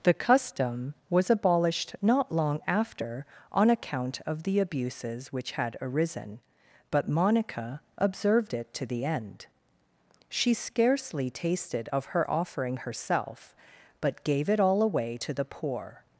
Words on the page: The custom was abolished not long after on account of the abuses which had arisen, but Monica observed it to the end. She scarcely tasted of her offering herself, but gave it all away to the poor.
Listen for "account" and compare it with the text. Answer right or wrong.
right